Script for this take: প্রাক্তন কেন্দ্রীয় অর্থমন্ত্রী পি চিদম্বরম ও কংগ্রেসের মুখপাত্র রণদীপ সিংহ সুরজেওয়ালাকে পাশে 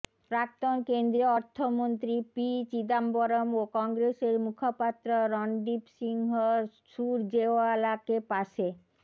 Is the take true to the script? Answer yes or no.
yes